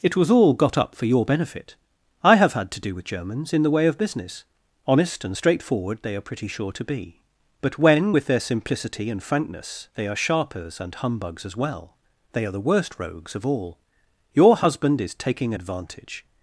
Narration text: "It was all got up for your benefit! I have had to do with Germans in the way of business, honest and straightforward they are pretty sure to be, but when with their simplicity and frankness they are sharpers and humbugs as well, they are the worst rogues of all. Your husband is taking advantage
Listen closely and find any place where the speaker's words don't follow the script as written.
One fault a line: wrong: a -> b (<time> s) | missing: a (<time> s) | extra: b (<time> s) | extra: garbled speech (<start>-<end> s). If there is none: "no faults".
no faults